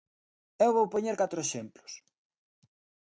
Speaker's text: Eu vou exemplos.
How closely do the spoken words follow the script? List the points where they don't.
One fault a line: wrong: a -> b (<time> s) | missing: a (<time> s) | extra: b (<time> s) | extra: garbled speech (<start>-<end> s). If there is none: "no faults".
extra: poñer catro (0.9 s)